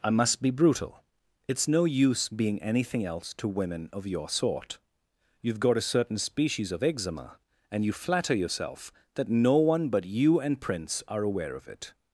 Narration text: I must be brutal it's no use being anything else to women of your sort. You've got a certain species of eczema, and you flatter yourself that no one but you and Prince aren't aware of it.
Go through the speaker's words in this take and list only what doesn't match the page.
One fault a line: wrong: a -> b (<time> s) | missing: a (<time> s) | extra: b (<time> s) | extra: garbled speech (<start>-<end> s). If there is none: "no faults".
wrong: aren't -> are (11.1 s)